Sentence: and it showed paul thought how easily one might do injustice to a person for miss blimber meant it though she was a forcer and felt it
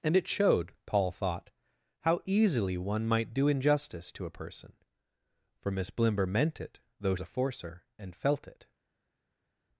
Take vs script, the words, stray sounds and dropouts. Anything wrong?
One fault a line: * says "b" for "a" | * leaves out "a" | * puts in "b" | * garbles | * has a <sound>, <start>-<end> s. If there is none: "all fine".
* leaves out "she was"